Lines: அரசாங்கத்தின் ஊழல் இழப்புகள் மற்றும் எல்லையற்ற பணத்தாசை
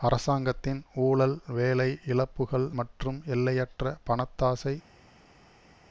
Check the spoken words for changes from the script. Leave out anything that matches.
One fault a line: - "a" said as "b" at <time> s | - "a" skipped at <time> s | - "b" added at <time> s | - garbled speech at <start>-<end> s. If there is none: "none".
- "வேலை" added at 1.5 s